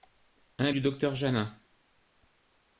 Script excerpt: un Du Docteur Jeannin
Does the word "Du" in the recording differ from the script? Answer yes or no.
no